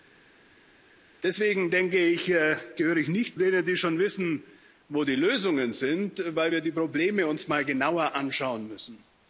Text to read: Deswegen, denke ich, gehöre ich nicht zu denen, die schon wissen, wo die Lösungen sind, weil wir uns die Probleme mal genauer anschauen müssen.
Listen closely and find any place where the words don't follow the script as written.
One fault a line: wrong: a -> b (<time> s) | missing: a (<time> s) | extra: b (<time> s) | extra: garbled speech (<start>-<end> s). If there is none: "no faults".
missing: zu (3.4 s)